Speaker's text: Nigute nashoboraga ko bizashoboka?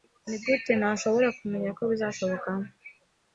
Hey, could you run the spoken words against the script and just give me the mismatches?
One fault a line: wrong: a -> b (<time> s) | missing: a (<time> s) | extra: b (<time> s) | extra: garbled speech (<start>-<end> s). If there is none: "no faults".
extra: kumenya (1.4 s)